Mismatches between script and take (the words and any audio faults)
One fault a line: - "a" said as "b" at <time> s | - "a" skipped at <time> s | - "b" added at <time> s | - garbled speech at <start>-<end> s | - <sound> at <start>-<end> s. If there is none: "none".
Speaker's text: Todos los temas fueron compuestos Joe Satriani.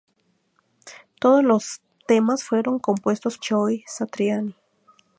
none